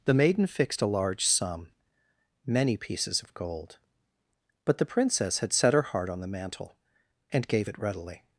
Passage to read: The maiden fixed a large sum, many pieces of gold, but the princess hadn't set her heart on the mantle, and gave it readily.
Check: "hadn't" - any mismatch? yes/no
yes